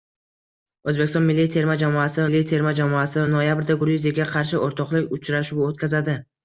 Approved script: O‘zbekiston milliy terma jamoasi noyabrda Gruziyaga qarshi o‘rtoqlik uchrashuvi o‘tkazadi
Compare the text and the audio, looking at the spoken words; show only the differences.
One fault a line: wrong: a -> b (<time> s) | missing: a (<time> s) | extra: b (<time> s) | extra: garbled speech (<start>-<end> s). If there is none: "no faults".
extra: milliy terma jamoasi (2.3 s)